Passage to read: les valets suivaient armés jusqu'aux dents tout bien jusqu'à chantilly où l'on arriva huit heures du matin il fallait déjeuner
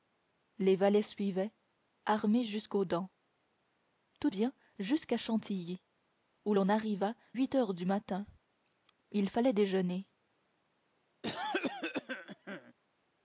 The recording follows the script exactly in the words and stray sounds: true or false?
false